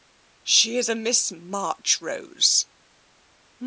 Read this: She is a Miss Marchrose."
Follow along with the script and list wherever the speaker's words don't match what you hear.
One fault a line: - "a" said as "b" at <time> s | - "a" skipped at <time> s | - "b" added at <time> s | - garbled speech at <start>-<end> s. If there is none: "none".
none